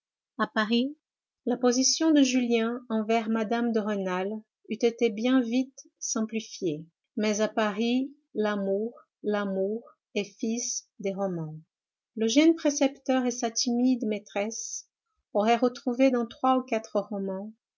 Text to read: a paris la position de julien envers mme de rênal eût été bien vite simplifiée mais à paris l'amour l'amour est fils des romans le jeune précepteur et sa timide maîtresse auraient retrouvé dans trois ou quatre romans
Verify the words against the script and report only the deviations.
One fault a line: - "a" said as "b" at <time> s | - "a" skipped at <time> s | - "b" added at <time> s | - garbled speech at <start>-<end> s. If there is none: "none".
none